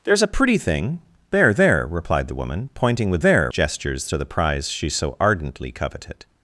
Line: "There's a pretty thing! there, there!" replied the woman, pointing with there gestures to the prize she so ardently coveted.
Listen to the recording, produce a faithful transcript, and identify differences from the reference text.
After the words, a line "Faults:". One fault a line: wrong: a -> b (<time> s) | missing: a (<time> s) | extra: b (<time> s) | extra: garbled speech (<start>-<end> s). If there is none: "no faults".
"There's a pretty thing! there, there!" replied the woman, pointing with there gestures to the prize she so ardently coveted.
Faults:
no faults